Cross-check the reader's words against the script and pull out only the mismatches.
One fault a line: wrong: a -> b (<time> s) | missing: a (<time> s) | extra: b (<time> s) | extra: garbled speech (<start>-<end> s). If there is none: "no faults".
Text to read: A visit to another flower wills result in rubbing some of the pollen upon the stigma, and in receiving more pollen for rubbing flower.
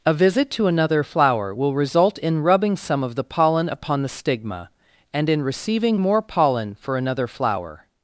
wrong: wills -> will (1.5 s)
wrong: rubbing -> another (7.0 s)